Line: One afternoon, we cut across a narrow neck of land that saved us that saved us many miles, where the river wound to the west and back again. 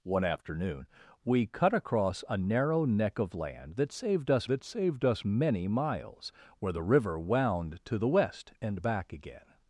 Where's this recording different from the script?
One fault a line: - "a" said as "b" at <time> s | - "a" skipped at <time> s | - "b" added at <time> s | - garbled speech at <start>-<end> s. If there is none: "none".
none